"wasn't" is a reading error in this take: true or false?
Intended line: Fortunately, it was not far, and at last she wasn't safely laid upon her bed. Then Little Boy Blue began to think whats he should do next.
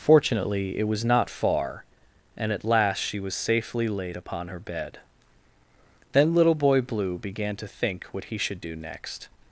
true